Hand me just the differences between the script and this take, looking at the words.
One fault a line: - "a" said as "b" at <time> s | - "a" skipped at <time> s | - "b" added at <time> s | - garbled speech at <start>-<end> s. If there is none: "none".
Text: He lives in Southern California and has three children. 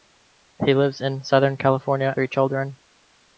- "and has" skipped at 2.1 s